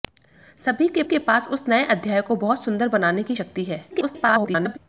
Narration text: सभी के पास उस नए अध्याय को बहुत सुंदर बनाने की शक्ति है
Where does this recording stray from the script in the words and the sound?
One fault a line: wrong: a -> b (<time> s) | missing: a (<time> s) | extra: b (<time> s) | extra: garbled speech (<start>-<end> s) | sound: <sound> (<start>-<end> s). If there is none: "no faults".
extra: के (1.0 s)
extra: garbled speech (3.9-4.8 s)